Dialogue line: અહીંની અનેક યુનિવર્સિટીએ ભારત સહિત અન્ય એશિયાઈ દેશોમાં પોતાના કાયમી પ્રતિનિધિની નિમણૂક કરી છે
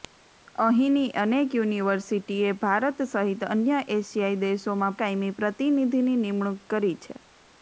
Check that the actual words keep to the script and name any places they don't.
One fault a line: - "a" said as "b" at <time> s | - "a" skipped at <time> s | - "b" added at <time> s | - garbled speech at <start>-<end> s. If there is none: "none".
- "પોતાના" skipped at 5.0 s